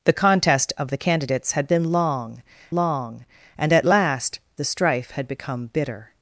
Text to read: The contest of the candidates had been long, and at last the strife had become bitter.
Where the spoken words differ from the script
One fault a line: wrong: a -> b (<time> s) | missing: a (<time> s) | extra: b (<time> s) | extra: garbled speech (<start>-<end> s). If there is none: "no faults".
extra: long (2.7 s)